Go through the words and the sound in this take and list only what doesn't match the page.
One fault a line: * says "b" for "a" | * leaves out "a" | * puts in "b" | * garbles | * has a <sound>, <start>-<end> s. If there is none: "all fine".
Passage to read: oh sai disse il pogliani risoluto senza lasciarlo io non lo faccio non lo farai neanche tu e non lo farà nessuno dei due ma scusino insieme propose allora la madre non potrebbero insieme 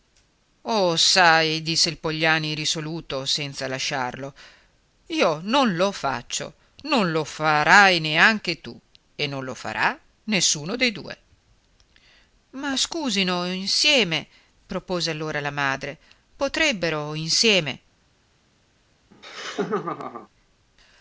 * leaves out "non"
* has a laugh, 19.1-20.3 s